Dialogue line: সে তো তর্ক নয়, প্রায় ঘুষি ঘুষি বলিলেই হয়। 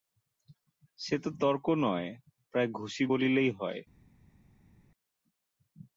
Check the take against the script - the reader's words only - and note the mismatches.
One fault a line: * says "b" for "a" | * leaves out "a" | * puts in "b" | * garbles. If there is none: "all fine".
* leaves out "ঘুষি"